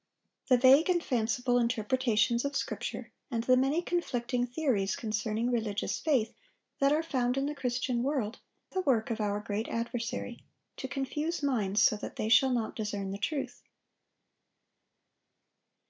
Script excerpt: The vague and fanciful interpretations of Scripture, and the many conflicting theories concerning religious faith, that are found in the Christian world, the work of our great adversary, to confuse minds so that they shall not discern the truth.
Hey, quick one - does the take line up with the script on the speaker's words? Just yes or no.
yes